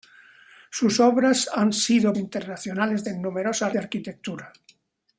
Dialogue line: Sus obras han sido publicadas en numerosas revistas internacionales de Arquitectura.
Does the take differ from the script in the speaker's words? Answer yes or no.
yes